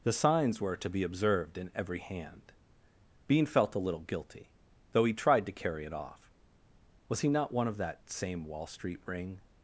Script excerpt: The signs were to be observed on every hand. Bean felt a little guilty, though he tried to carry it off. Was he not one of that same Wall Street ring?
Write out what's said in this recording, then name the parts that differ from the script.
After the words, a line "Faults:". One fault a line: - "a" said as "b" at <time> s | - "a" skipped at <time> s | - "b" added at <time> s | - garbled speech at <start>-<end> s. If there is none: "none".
The signs were to be observed in every hand. Bean felt a little guilty, though he tried to carry it off. Was he not one of that same Wall Street ring?
Faults:
- "on" said as "in" at 1.6 s